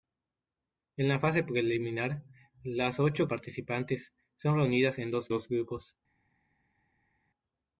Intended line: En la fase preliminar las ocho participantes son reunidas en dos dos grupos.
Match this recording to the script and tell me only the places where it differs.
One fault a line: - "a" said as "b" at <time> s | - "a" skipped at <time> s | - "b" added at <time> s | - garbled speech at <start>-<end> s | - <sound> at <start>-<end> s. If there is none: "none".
none